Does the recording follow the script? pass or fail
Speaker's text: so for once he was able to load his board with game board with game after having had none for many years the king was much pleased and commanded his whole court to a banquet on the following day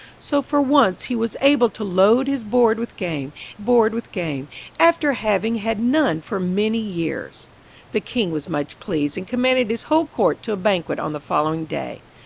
pass